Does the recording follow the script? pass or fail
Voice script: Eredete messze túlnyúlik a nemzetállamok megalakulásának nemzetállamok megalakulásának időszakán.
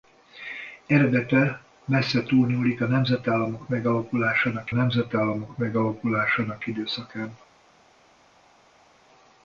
pass